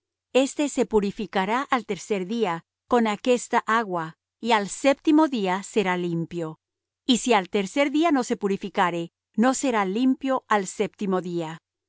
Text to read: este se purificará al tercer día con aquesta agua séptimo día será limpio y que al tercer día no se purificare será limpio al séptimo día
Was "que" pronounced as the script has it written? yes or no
no